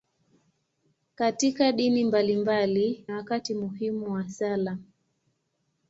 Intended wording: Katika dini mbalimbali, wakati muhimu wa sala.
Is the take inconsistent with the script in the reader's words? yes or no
no